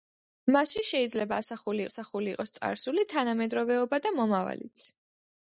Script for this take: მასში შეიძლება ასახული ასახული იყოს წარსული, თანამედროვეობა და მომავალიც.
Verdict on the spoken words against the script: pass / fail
pass